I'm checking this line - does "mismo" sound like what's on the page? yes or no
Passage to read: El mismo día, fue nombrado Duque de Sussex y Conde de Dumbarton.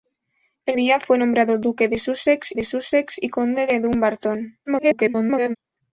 no